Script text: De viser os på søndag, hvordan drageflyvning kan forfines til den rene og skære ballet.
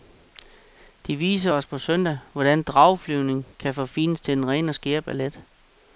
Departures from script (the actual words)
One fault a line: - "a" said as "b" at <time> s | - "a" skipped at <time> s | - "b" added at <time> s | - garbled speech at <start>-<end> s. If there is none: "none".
none